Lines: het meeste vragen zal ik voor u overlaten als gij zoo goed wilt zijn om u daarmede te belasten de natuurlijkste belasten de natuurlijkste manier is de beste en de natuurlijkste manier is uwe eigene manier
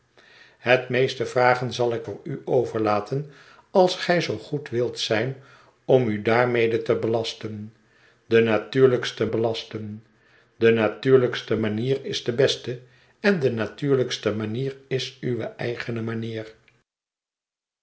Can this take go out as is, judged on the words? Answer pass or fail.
pass